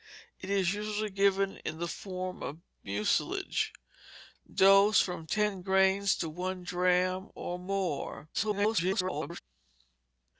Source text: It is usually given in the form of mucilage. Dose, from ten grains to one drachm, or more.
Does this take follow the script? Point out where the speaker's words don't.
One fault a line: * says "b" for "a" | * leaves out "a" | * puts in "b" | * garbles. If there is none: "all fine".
* garbles